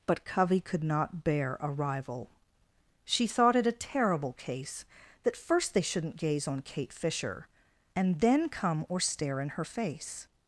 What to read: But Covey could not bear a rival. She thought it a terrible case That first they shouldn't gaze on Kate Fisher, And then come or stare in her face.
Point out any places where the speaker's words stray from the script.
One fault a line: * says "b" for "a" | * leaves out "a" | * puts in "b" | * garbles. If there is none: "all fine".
all fine